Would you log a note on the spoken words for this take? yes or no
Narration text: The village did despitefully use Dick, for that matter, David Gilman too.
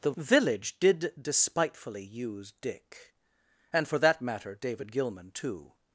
yes